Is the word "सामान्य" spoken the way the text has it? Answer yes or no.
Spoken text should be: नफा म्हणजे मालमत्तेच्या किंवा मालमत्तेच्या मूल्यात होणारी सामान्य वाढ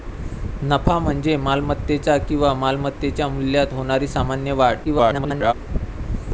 yes